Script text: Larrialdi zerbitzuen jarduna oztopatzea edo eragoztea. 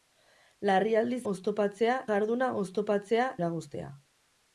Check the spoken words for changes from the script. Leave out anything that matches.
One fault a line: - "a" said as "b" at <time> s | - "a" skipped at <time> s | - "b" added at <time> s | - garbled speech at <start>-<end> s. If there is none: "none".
- "zerbitzuen" said as "oztopatzea" at 1.3 s
- "edo" skipped at 3.3 s